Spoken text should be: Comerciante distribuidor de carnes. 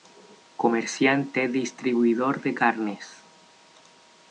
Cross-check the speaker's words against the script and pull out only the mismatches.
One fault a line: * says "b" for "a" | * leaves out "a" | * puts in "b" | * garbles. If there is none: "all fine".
all fine